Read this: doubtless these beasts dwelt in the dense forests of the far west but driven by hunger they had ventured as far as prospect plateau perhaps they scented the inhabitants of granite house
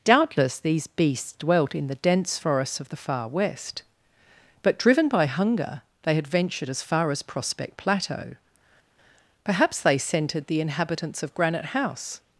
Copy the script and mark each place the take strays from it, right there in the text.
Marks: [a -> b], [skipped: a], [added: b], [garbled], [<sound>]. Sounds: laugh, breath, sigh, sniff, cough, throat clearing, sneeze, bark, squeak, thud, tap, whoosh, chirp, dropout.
doubtless these beasts dwelt in the dense forests of the far west but driven by hunger they had ventured as far as prospect plateau perhaps they scented the inhabitants of granite house